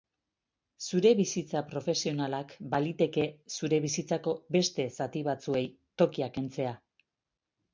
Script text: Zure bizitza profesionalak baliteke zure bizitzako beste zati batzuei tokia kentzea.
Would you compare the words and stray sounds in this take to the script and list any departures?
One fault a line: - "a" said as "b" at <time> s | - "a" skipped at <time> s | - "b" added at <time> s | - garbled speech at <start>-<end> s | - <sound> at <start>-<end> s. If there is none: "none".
none